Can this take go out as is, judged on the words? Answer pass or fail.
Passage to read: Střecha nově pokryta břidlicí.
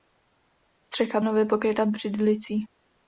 pass